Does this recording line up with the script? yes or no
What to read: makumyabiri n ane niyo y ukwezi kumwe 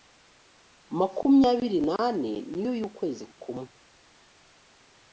yes